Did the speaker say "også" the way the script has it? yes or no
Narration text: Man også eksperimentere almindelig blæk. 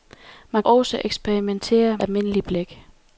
yes